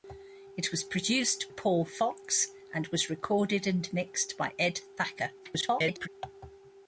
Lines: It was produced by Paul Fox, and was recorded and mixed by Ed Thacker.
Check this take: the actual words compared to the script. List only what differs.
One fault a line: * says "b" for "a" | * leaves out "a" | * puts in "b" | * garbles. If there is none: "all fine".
* leaves out "by"
* garbles